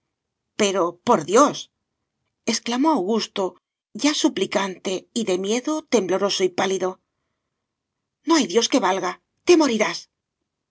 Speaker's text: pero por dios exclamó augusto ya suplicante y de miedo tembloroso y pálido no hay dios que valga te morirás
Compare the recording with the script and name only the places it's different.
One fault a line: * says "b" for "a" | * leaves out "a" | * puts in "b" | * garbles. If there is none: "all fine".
all fine